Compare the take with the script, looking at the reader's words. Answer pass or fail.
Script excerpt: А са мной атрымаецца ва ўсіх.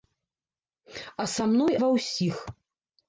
fail